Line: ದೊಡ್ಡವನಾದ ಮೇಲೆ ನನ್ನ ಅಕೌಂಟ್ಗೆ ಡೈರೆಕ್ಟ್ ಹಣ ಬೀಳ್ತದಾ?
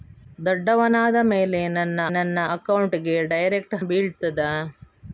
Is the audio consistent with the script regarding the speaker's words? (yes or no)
no